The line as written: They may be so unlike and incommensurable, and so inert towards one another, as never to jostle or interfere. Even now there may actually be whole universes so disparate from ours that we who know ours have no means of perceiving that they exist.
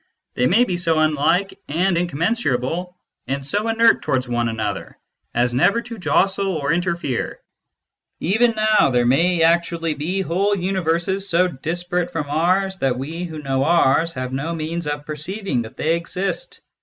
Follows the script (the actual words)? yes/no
yes